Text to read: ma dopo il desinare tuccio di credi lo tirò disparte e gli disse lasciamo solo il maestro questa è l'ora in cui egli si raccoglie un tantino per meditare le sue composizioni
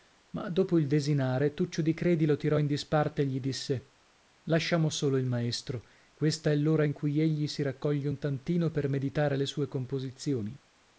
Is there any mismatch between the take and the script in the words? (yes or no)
yes